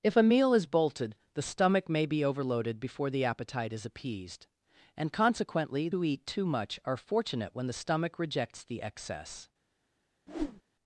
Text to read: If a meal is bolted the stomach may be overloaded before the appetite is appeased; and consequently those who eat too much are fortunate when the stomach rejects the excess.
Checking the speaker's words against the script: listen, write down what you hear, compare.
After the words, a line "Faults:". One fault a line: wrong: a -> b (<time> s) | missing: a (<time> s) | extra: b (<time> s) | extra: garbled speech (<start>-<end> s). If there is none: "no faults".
If a meal is bolted the stomach may be overloaded before the appetite is appeased; and consequently who eat too much are fortunate when the stomach rejects the excess.
Faults:
missing: those (5.9 s)